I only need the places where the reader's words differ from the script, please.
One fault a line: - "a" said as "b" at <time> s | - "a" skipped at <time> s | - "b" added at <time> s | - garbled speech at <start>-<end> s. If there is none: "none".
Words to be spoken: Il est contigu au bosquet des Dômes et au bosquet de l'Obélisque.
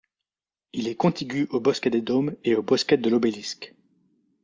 none